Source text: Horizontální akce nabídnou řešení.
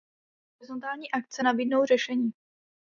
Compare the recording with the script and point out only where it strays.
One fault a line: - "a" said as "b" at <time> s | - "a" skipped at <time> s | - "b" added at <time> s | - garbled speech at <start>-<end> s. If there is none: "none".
none